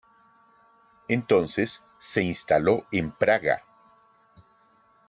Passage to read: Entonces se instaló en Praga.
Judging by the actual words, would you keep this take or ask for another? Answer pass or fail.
pass